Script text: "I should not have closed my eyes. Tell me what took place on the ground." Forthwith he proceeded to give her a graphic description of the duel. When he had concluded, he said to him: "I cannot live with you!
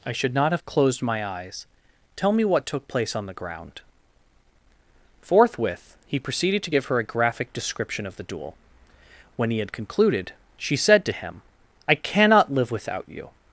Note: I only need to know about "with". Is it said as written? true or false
false